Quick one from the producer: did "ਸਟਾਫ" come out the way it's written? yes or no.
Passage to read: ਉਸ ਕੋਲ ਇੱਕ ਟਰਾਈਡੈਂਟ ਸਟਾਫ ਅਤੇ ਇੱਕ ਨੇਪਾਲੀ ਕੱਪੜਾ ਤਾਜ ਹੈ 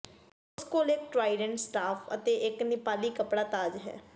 yes